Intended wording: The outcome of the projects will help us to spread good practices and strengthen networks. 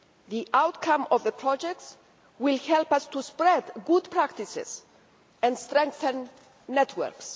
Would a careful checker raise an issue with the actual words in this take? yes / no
no